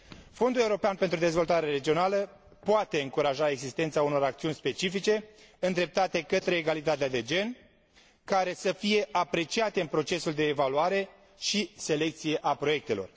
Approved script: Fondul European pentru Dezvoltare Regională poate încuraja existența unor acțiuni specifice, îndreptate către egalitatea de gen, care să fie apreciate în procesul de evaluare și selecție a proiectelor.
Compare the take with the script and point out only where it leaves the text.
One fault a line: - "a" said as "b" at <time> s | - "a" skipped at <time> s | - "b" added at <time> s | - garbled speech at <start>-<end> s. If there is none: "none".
none